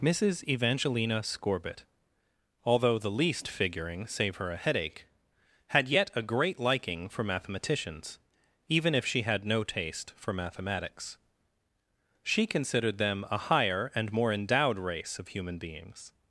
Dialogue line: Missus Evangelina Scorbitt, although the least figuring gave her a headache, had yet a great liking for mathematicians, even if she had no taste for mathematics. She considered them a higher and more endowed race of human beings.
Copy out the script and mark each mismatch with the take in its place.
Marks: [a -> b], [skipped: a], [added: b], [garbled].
Missus Evangelina Scorbitt, although the least figuring [gave -> save] her a headache, had yet a great liking for mathematicians, even if she had no taste for mathematics. She considered them a higher and more endowed race of human beings.